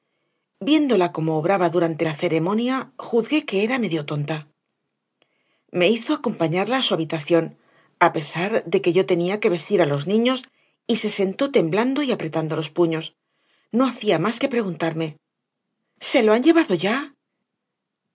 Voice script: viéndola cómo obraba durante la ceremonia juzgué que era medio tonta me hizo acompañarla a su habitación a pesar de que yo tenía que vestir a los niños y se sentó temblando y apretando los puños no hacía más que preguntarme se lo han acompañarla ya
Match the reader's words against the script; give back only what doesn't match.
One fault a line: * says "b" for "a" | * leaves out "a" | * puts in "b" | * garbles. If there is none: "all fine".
* says "llevado" for "acompañarla"